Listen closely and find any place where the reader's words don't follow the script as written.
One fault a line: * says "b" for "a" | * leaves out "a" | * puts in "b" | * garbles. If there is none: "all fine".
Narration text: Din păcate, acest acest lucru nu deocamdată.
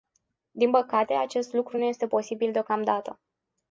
* leaves out "acest"
* puts in "este posibil"